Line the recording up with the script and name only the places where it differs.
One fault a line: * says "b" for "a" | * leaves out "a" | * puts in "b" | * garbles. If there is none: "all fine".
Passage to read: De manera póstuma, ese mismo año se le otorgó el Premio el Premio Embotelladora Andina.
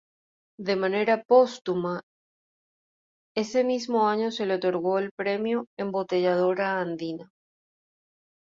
* leaves out "el Premio"